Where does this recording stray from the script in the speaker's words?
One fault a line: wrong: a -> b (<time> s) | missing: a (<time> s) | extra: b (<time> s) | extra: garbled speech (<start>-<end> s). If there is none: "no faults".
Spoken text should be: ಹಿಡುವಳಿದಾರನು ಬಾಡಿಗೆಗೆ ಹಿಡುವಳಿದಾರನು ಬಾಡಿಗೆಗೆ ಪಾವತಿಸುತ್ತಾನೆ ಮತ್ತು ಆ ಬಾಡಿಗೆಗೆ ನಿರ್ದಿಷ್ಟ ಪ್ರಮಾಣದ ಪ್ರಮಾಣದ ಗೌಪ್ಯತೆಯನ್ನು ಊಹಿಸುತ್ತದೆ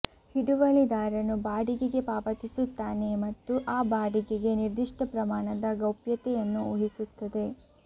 missing: ಹಿಡುವಳಿದಾರನು ಬಾಡಿಗೆಗೆ (2.0 s)
missing: ಪ್ರಮಾಣದ (5.8 s)